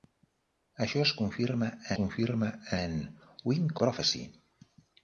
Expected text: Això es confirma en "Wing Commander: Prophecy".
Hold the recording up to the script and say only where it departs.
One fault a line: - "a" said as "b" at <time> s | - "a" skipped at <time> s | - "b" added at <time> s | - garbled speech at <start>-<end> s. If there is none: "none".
- "confirma" added at 2.0 s
- "Commander" skipped at 3.7 s